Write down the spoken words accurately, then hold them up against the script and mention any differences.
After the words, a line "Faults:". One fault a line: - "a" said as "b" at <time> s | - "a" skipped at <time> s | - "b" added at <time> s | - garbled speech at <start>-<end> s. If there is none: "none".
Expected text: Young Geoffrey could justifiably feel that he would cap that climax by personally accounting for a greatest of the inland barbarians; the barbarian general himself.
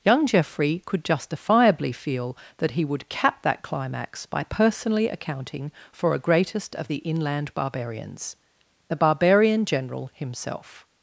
Young Geoffrey could justifiably feel that he would cap that climax by personally accounting for a greatest of the inland barbarians; the barbarian general himself.
Faults:
none